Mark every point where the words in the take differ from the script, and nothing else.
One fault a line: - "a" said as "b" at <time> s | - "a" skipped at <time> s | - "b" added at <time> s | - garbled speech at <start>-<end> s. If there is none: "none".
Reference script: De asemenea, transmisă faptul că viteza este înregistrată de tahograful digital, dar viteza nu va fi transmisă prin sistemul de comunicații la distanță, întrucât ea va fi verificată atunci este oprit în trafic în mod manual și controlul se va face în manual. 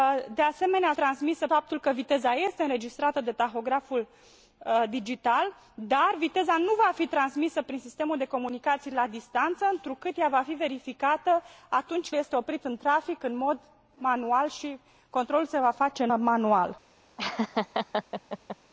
none